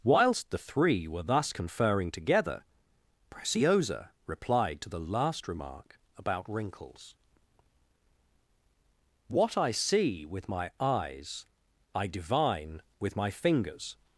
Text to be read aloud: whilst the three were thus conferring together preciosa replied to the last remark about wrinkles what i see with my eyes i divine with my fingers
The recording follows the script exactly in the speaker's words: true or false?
true